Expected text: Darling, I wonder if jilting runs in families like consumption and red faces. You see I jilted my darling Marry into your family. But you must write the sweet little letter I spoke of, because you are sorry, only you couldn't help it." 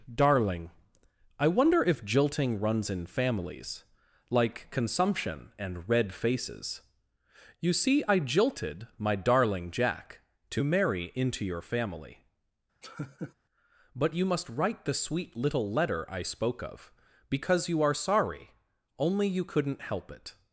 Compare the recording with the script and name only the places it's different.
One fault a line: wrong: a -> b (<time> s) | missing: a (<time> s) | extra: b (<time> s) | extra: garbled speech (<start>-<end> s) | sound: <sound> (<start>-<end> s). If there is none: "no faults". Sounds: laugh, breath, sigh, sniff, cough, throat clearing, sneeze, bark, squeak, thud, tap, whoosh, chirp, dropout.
extra: Jack to (9.7 s)
sound: laugh (12.8-13.3 s)